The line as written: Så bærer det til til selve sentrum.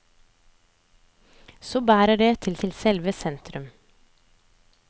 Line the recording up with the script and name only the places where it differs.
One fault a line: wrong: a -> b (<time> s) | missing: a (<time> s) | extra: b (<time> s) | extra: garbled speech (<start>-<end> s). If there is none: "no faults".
no faults